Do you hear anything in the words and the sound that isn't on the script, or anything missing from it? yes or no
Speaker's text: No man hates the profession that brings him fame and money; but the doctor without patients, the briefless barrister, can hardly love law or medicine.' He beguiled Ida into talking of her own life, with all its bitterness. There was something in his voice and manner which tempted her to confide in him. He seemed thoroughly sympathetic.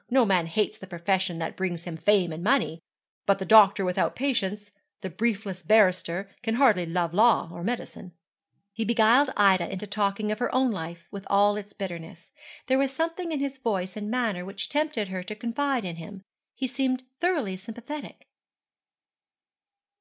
no